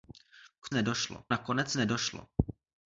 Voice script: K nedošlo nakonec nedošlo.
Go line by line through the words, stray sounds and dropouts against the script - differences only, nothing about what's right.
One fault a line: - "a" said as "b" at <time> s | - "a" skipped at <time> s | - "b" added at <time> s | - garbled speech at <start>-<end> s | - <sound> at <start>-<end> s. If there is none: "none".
none